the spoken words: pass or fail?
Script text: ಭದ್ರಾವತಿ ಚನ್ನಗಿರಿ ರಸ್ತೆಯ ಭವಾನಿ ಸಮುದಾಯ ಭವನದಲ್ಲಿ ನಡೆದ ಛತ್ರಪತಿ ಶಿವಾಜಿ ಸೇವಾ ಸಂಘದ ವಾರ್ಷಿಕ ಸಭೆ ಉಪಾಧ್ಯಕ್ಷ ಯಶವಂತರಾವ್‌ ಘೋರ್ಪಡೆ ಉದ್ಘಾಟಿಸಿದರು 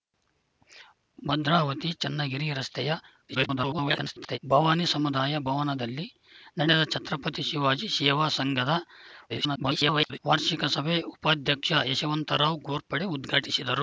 fail